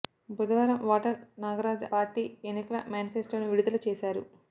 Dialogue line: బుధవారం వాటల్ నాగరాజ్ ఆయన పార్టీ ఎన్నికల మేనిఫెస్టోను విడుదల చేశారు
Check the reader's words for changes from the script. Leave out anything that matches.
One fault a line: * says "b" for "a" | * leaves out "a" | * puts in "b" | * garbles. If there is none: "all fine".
* leaves out "ఆయన"